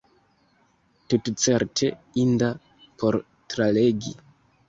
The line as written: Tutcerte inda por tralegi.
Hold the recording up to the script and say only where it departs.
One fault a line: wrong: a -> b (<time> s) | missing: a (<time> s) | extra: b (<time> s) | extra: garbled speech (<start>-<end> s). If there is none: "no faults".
no faults